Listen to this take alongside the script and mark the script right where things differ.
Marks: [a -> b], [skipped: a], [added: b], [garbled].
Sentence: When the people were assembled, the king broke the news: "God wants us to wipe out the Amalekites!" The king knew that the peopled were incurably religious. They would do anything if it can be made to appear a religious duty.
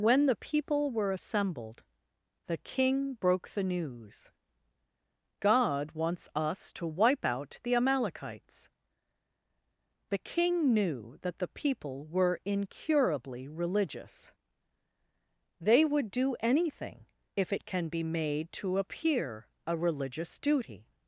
When the people were assembled, the king broke the news: "God wants us to wipe out the Amalekites!" The king knew that the [peopled -> people] were incurably religious. They would do anything if it can be made to appear a religious duty.